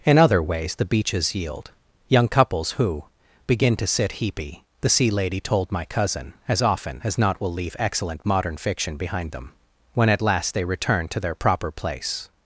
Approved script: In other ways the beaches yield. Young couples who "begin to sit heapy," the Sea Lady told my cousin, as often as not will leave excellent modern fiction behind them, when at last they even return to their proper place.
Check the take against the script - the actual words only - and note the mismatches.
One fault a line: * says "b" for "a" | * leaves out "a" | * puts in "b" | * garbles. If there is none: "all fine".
* leaves out "even"